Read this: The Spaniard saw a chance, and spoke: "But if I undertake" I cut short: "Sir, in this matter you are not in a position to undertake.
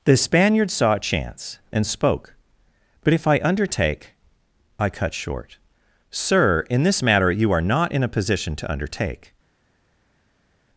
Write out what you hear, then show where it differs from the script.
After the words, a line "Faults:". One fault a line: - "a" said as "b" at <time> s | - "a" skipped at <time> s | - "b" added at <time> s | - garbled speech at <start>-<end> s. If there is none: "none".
The Spaniard saw a chance, and spoke: "But if I undertake" I cut short: "Sir, in this matter you are not in a position to undertake.
Faults:
none